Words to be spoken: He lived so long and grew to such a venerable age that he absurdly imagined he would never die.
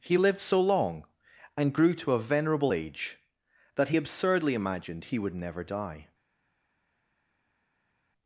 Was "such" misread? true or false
true